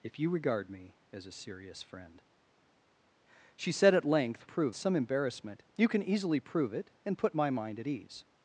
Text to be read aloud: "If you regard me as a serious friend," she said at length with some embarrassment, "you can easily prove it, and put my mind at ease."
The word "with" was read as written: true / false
false